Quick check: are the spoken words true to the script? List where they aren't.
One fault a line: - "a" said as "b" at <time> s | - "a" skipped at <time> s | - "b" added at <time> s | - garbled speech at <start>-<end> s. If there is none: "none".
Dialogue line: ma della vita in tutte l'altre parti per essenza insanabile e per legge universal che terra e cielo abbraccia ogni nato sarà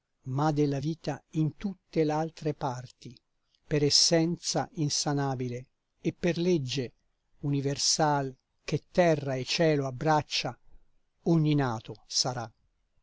none